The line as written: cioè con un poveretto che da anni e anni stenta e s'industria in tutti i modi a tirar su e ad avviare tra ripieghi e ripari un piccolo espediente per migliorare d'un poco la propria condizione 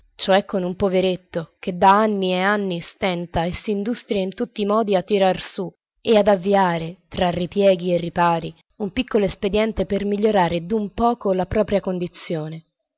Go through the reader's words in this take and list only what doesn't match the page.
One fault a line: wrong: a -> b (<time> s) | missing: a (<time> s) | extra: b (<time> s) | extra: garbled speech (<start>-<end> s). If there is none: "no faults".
no faults